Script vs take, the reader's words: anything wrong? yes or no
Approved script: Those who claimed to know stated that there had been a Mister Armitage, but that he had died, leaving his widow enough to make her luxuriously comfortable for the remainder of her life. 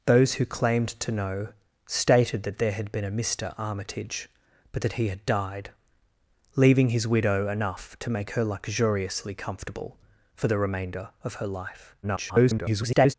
yes